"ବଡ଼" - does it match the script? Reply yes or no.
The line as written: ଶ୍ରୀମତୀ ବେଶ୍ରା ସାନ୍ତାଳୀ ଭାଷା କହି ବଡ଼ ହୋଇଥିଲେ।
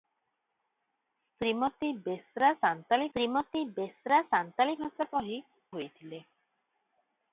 no